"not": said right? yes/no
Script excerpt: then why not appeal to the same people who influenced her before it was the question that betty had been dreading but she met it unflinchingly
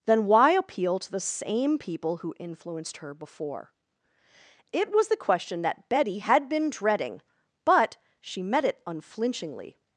no